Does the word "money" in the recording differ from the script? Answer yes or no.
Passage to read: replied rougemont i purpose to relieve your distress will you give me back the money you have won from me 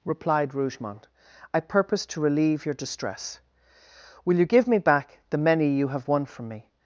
yes